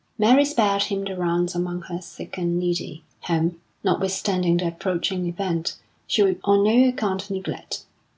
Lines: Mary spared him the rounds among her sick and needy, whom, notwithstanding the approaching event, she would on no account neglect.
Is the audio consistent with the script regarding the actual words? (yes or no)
yes